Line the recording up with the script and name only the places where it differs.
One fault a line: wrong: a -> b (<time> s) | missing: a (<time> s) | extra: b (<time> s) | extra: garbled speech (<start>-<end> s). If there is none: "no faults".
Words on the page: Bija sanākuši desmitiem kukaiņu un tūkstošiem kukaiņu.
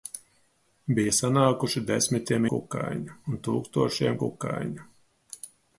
no faults